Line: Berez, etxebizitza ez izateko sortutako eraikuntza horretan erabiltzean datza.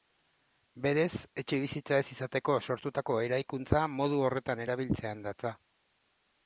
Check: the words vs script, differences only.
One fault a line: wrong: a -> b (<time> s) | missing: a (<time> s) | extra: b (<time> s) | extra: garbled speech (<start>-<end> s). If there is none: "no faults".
extra: modu (4.0 s)